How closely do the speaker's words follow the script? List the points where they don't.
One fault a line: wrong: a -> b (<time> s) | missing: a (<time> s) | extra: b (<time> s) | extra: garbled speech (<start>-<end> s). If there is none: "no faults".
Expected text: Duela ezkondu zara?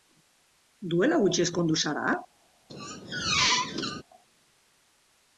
extra: gutxi (1.2 s)